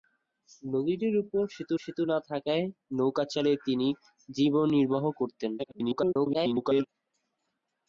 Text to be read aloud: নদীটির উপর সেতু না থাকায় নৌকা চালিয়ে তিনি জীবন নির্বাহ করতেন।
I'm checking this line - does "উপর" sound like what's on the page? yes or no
yes